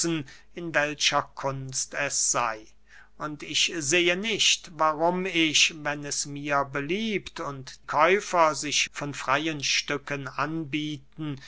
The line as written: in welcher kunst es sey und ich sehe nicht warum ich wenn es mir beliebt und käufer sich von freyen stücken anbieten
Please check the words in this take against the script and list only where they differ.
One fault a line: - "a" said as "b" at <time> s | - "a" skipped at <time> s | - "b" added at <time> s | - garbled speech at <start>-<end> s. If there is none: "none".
none